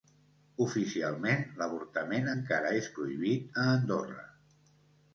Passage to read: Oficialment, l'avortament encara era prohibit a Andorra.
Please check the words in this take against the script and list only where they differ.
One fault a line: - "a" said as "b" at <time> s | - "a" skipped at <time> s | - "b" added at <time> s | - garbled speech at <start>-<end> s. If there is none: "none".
- "era" said as "és" at 2.8 s